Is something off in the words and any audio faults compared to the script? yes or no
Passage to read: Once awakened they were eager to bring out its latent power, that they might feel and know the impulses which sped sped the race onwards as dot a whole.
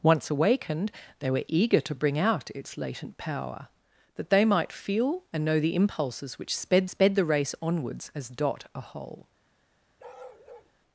yes